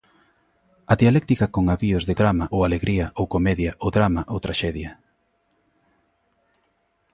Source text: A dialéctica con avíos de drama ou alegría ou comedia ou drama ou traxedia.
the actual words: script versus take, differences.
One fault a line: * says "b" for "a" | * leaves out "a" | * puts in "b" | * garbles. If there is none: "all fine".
all fine